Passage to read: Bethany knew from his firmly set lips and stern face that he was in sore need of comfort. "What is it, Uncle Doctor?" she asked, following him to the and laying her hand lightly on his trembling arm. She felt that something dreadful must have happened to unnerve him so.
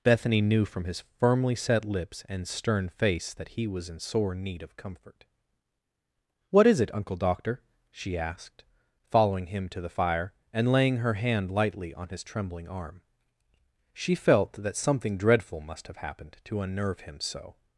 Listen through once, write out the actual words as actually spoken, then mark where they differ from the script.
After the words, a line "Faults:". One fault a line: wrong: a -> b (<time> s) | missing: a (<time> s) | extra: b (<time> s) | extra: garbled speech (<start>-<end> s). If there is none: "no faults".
Bethany knew from his firmly set lips and stern face that he was in sore need of comfort. "What is it, Uncle Doctor?" she asked, following him to the fire, and laying her hand lightly on his trembling arm. She felt that something dreadful must have happened to unnerve him so.
Faults:
extra: fire (9.9 s)